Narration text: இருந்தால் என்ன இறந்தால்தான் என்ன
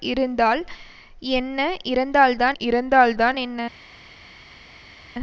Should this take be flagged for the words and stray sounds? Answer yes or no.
yes